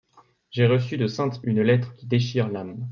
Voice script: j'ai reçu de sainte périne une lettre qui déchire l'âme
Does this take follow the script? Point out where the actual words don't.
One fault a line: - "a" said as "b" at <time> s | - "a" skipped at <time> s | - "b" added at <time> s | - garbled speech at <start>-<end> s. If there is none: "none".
- "périne" skipped at 1.4 s